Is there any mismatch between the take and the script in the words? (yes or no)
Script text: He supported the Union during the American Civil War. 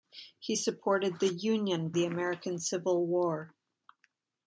yes